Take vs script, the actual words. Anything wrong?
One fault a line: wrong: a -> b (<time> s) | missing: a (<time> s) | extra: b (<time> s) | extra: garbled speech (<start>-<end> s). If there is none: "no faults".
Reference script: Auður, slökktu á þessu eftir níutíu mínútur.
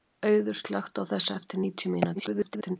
extra: garbled speech (2.1-2.8 s)